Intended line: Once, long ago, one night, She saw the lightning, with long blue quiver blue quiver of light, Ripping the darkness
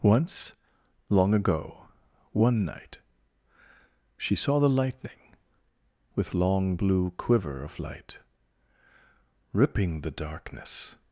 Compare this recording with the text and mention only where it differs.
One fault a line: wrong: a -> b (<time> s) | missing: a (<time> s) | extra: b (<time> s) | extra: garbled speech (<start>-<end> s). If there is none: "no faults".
missing: blue quiver (7.6 s)